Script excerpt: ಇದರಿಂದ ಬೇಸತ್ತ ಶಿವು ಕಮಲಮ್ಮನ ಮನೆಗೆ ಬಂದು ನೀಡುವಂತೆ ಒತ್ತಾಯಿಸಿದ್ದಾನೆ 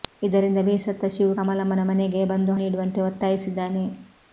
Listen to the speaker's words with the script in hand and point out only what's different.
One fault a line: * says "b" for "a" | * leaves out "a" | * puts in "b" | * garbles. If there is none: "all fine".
all fine